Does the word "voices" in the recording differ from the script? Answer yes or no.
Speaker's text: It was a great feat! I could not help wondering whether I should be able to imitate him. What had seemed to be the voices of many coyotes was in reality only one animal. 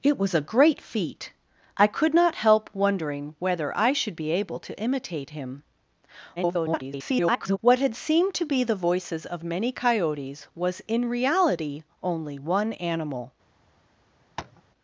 no